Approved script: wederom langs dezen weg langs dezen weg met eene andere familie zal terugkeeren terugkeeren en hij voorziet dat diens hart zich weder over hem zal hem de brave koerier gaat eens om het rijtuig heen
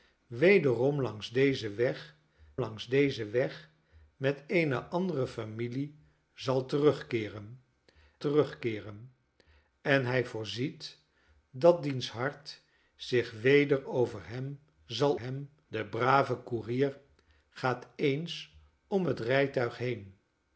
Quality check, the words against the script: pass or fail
pass